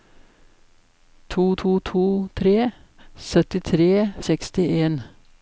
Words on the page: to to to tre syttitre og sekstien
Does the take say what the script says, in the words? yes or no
yes